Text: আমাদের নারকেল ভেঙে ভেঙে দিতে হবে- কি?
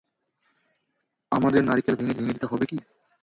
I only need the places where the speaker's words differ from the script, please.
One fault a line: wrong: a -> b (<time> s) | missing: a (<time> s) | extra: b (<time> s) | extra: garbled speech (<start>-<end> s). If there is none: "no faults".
no faults